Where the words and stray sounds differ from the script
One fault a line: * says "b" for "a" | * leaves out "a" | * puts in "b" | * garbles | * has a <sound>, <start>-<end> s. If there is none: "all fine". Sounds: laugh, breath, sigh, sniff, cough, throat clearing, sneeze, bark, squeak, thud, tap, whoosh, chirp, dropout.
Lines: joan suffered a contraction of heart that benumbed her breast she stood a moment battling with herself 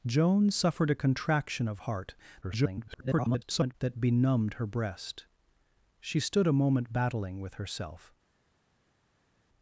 * garbles